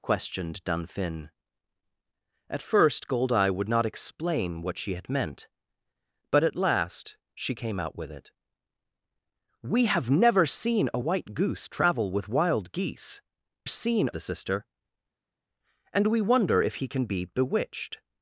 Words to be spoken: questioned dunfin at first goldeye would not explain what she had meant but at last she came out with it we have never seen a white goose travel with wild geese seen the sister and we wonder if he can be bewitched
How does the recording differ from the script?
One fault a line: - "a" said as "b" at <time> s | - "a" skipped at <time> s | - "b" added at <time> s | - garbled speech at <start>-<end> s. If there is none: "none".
none